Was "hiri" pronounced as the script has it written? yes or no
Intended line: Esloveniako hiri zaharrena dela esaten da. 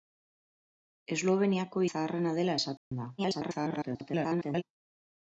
no